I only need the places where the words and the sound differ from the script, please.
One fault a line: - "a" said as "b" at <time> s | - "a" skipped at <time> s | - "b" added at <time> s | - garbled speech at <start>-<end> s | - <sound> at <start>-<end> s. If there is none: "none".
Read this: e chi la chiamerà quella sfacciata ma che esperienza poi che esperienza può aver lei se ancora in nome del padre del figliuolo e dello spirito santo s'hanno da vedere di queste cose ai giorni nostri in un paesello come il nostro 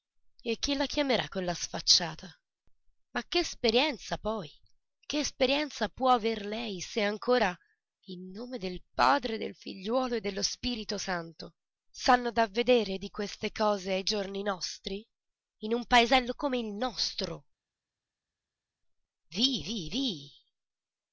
none